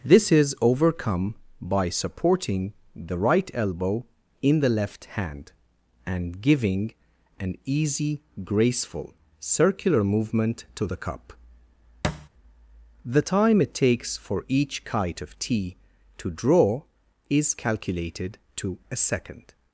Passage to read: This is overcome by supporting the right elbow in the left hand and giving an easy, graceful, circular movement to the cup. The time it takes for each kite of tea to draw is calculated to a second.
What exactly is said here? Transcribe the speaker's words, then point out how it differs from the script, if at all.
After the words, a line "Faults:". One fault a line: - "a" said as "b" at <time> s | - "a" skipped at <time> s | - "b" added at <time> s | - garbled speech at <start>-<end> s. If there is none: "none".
This is overcome by supporting the right elbow in the left hand and giving an easy, graceful, circular movement to the cup. The time it takes for each kite of tea to draw is calculated to a second.
Faults:
none